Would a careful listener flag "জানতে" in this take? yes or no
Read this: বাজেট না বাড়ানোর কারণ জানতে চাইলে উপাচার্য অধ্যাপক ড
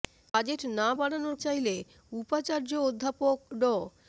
yes